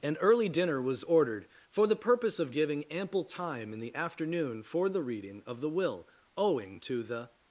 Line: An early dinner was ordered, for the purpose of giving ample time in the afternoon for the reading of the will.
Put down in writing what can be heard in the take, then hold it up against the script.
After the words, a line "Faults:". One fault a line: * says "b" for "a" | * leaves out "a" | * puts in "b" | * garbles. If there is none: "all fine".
An early dinner was ordered, for the purpose of giving ample time in the afternoon for the reading of the will. Owing to the
Faults:
* puts in "Owing to the"